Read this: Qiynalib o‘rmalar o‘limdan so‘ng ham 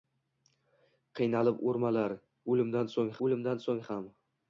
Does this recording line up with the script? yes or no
no